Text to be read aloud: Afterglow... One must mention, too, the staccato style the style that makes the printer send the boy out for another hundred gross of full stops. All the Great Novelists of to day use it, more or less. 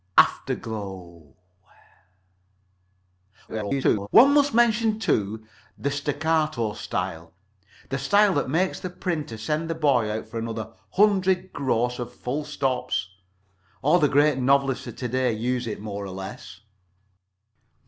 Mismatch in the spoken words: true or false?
true